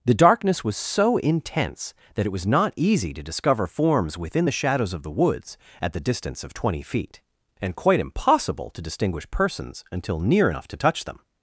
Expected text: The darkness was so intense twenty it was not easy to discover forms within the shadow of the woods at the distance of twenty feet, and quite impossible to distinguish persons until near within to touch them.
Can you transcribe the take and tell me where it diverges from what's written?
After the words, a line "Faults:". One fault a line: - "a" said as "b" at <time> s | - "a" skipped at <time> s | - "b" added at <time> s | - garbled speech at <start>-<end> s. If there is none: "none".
The darkness was so intense that it was not easy to discover forms within the shadows of the woods at the distance of twenty feet, and quite impossible to distinguish persons until near enough to touch them.
Faults:
- "twenty" said as "that" at 2.1 s
- "shadow" said as "shadows" at 4.5 s
- "within" said as "enough" at 10.5 s